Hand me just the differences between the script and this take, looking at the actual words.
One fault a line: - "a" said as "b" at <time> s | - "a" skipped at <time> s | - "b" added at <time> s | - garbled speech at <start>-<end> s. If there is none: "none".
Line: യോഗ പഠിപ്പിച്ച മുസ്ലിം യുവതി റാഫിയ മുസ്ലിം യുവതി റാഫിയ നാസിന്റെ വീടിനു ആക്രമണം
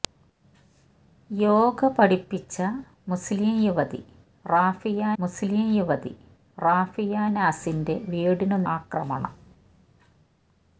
none